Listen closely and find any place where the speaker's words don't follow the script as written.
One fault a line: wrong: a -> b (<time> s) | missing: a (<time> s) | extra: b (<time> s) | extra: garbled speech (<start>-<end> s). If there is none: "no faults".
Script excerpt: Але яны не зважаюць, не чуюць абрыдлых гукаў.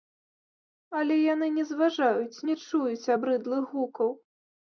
no faults